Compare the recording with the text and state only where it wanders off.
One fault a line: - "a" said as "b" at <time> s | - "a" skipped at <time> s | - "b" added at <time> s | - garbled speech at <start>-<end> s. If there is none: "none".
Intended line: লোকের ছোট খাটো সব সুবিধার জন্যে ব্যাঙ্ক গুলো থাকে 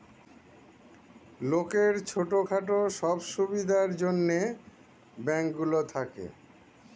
none